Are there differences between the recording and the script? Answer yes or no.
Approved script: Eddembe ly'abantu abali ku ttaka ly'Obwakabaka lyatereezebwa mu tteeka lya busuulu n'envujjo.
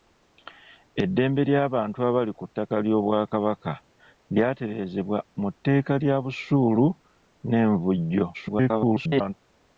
yes